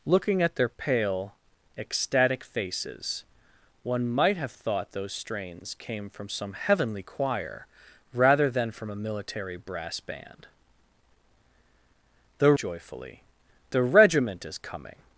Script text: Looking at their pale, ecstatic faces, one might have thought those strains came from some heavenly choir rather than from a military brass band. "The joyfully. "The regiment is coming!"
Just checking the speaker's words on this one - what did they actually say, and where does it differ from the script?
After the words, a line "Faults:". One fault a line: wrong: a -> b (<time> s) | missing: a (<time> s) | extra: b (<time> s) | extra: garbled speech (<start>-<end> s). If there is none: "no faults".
Looking at their pale, ecstatic faces, one might have thought those strains came from some heavenly choir rather than from a military brass band. "The joyfully. "The regiment is coming!"
Faults:
no faults